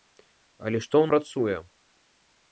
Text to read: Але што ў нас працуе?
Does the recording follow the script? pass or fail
fail